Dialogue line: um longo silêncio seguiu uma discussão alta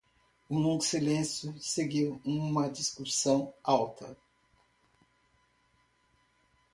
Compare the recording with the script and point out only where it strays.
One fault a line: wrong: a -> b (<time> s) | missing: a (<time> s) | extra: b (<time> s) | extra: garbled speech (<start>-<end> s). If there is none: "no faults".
no faults